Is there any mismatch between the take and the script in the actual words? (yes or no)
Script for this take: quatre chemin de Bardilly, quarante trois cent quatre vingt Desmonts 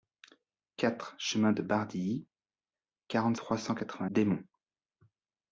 no